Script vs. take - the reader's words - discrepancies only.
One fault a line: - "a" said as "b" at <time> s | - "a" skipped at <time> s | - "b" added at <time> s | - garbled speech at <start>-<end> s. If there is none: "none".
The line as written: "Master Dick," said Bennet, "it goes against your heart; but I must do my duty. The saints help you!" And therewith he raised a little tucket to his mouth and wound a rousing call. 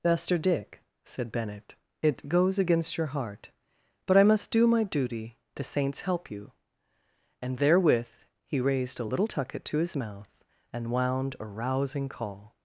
none